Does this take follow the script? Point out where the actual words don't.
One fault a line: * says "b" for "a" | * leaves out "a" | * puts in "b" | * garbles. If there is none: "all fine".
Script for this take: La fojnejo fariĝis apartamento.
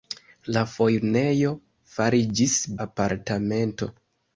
all fine